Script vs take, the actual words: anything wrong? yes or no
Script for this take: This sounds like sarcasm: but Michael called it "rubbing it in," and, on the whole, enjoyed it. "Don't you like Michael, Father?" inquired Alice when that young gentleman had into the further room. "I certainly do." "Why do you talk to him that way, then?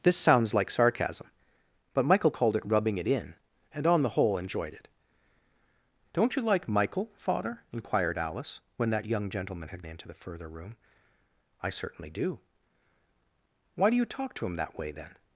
no